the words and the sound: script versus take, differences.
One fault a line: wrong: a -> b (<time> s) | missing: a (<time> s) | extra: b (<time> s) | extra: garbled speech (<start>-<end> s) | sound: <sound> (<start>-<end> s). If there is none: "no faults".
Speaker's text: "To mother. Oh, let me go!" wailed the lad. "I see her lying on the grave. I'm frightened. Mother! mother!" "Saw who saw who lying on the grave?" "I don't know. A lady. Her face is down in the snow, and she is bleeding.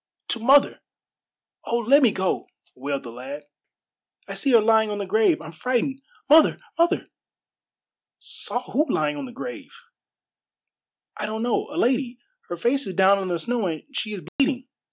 missing: saw who (8.8 s)
sound: dropout (14.3-14.4 s)